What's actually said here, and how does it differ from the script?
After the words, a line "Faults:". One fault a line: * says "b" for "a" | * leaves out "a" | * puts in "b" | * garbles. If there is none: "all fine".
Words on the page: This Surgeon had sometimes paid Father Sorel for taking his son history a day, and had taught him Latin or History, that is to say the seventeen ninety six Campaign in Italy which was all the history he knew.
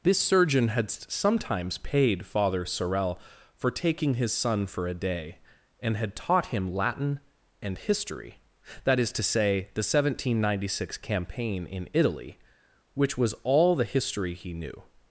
This Surgeon had sometimes paid Father Sorel for taking his son for a day, and had taught him Latin and History, that is to say the seventeen ninety six Campaign in Italy which was all the history he knew.
Faults:
* says "for" for "history"
* says "and" for "or"